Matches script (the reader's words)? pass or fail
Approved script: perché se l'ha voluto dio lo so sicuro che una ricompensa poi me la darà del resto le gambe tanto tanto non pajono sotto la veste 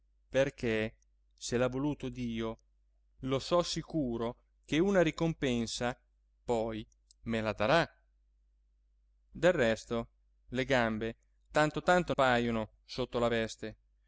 fail